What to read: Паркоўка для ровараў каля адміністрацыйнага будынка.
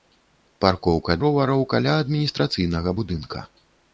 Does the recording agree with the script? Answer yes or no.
no